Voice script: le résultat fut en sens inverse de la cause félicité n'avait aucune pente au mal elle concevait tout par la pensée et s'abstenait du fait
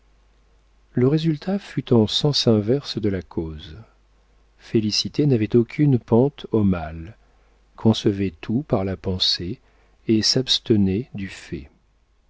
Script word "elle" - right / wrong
wrong